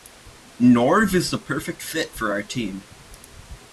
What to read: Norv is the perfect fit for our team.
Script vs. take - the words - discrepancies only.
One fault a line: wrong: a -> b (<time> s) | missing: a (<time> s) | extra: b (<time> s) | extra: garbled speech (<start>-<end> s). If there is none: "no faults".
no faults